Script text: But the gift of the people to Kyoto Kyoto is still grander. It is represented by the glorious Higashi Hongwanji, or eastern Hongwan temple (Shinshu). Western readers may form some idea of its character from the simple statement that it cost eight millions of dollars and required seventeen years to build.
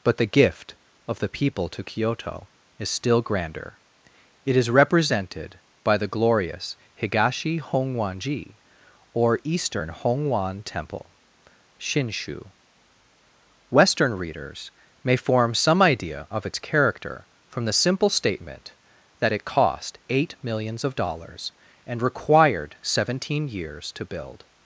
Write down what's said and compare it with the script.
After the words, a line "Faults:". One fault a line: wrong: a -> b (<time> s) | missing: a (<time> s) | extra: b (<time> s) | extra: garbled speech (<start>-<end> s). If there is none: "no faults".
But the gift of the people to Kyoto is still grander. It is represented by the glorious Higashi Hongwanji, or eastern Hongwan temple (Shinshu). Western readers may form some idea of its character from the simple statement that it cost eight millions of dollars and required seventeen years to build.
Faults:
missing: Kyoto (2.5 s)